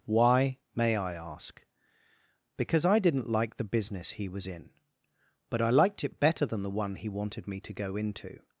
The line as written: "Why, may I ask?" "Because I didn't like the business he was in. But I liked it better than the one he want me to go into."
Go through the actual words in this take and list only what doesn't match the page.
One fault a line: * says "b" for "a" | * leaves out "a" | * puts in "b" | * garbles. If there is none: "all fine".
* says "wanted" for "want"